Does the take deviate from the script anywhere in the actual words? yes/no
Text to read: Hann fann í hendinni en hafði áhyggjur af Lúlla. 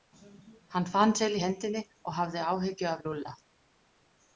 yes